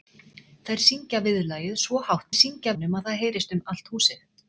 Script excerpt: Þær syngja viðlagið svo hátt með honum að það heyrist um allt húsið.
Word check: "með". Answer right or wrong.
wrong